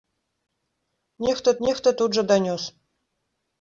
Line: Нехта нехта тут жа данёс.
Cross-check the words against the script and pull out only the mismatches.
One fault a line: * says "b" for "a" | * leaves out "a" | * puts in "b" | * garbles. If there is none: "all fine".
all fine